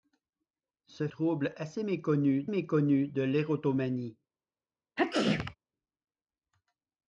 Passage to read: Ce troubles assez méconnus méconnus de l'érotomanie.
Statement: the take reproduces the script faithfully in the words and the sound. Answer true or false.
false